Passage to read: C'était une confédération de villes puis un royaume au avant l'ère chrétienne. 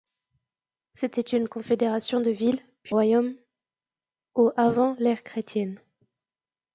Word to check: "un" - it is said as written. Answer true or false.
false